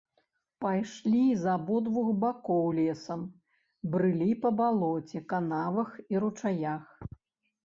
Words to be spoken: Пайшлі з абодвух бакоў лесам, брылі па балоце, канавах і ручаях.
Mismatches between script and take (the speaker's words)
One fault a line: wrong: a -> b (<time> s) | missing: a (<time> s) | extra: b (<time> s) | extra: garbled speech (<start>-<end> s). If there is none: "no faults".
no faults